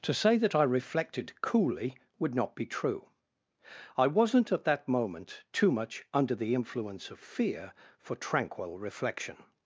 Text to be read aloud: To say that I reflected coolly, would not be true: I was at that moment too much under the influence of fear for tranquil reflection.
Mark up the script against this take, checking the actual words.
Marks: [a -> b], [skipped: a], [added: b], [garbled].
To say that I reflected coolly, would not be true: I [was -> wasn't] at that moment too much under the influence of fear for tranquil reflection.